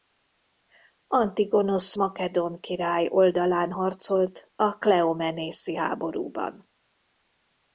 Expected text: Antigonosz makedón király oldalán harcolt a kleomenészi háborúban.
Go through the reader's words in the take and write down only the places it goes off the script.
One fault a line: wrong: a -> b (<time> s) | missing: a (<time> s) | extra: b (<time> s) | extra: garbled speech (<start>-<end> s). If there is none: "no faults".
no faults